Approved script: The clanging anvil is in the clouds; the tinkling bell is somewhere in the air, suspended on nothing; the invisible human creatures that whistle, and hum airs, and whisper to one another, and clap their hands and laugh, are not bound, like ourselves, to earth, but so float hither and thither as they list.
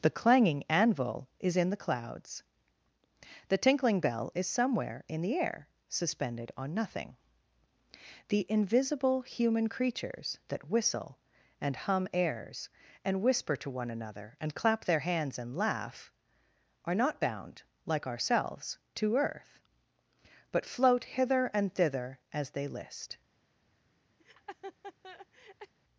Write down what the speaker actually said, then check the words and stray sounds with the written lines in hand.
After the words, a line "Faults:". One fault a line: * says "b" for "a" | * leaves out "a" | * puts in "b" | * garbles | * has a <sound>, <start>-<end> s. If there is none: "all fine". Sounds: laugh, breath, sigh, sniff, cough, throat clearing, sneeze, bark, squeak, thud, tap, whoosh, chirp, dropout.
The clanging anvil is in the clouds; the tinkling bell is somewhere in the air, suspended on nothing; the invisible human creatures that whistle, and hum airs, and whisper to one another, and clap their hands and laugh, are not bound, like ourselves, to earth, but float hither and thither as they list.
Faults:
* leaves out "so"
* has a laugh, 24.2-25.7 s